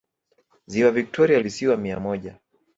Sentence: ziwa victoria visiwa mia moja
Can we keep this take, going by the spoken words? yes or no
yes